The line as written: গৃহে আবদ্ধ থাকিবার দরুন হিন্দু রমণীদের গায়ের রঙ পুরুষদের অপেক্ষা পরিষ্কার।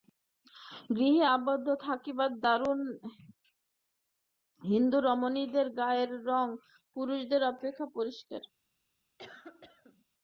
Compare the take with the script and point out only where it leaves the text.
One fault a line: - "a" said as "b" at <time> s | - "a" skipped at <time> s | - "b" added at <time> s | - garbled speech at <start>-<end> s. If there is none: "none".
none